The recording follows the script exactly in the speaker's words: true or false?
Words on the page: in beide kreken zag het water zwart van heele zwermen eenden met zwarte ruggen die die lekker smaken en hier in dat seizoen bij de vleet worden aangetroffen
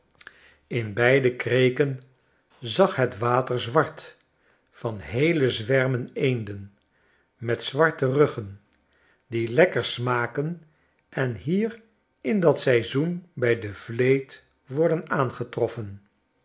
false